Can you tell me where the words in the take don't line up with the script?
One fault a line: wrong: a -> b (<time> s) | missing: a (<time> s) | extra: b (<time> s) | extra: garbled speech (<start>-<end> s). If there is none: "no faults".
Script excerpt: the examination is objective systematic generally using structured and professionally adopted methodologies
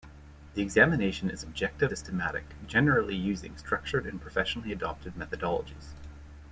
no faults